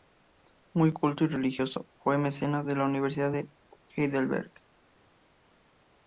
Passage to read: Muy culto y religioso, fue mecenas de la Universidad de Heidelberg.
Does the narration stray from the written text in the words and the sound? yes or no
no